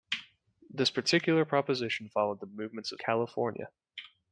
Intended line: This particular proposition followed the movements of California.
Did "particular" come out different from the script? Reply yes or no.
no